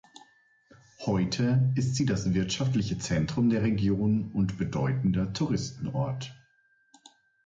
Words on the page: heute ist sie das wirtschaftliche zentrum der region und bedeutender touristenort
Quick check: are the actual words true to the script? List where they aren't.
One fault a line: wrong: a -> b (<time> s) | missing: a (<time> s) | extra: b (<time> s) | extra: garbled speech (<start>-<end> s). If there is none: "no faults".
no faults